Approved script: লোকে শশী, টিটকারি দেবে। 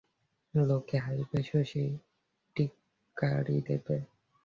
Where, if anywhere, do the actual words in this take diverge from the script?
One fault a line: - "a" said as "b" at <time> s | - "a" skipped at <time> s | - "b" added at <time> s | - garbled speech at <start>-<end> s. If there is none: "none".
- "হাসবে" added at 1.0 s